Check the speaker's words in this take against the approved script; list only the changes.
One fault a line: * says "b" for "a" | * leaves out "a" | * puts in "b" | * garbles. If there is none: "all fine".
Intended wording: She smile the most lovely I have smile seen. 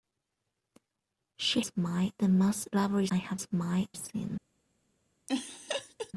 all fine